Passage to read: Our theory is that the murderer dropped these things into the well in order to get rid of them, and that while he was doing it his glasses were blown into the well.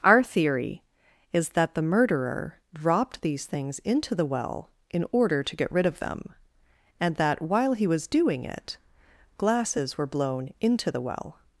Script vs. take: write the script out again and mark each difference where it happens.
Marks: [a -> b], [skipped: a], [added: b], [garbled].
Our theory is that the murderer dropped these things into the well in order to get rid of them, and that while he was doing it [skipped: his] glasses were blown into the well.